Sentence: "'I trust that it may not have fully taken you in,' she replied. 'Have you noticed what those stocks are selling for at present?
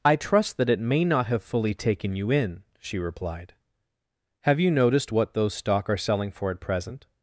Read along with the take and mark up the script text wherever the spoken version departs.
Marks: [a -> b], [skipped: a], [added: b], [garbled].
"'I trust that it may not have fully taken you in,' she replied. 'Have you noticed what those [stocks -> stock] are selling for at present?